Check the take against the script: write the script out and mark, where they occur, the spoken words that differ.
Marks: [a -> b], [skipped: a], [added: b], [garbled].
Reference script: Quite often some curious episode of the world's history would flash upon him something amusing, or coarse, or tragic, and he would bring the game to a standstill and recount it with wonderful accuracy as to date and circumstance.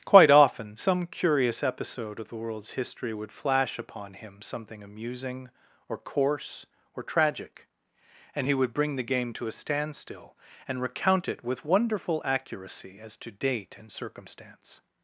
Quite often some curious episode of the world's history would flash upon him something amusing, or coarse, or tragic, and he would bring the game to a standstill and recount it with wonderful accuracy as to date and circumstance.